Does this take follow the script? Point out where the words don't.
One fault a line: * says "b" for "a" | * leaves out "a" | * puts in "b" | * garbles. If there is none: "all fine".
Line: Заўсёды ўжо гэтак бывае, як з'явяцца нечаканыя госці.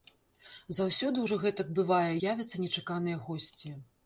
* leaves out "як"